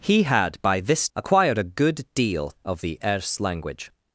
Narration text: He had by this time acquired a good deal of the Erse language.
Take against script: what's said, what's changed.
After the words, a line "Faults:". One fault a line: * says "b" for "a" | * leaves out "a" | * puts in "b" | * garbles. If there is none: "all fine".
He had by this acquired a good deal of the Erse language.
Faults:
* leaves out "time"